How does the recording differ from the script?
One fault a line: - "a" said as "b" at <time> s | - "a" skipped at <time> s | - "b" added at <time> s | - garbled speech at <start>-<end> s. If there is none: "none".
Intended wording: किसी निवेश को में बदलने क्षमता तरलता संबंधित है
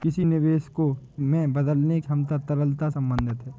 none